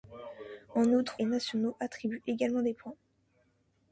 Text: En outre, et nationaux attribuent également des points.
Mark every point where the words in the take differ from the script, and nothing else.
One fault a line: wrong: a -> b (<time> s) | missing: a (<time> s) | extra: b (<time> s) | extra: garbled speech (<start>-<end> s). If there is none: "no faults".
no faults